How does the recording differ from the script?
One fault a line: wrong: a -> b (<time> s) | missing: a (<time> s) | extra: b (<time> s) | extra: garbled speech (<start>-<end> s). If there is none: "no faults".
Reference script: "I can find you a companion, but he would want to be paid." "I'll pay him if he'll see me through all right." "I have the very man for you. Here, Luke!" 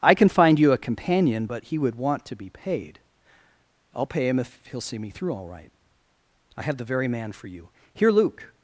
no faults